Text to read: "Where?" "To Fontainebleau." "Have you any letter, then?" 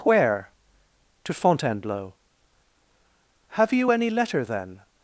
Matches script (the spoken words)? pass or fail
pass